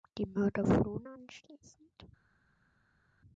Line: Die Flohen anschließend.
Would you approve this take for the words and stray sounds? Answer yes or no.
no